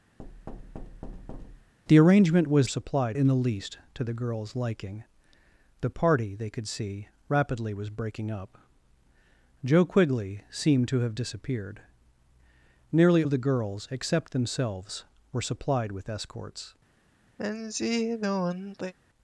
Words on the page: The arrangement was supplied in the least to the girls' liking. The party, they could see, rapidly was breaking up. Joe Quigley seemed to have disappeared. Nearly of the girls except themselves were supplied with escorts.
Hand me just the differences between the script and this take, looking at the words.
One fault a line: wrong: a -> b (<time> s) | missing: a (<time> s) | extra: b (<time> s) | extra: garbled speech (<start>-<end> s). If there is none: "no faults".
no faults